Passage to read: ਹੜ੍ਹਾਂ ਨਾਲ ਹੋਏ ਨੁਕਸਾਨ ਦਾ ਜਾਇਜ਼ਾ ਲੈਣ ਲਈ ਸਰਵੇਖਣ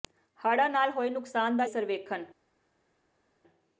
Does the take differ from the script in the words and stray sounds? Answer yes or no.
yes